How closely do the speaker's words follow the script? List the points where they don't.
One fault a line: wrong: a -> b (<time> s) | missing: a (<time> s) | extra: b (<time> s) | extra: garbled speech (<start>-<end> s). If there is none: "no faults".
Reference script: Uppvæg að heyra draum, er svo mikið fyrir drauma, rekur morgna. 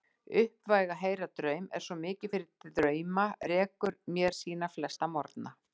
extra: mér sína flesta (4.2 s)